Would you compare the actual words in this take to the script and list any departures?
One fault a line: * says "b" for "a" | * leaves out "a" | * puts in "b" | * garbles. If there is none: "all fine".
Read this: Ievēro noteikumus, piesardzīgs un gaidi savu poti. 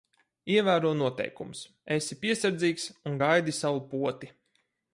* puts in "esi"